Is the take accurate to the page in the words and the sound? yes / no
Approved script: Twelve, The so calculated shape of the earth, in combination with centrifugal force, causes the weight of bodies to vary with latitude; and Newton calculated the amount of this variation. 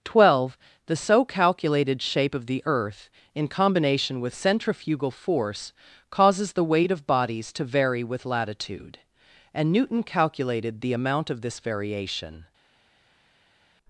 yes